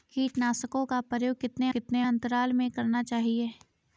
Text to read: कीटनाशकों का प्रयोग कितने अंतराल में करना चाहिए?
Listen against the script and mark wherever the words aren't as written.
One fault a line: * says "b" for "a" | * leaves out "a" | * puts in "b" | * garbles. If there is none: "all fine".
* puts in "कितने"